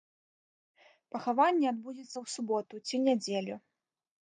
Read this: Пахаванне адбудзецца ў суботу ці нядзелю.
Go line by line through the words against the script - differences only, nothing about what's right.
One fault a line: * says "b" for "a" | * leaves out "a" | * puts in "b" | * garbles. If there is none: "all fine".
all fine